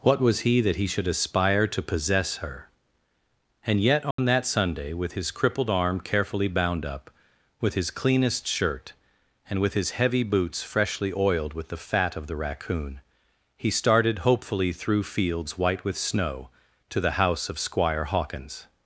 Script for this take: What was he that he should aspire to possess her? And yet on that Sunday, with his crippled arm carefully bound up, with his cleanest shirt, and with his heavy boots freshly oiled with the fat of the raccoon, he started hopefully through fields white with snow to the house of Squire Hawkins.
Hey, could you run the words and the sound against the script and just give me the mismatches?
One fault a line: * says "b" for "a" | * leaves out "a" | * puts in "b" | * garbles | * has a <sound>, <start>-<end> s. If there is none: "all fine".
* has a dropout, 4.1-4.2 s